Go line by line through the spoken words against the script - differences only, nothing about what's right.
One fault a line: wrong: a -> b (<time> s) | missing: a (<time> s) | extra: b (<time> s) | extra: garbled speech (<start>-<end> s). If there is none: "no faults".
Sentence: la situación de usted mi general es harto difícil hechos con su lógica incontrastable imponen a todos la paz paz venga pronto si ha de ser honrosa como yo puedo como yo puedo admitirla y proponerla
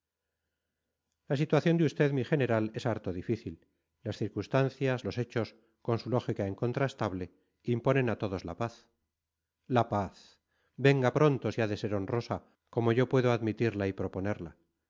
extra: las circunstancias los (4.0 s)
extra: la (9.7 s)
missing: como yo puedo (13.3 s)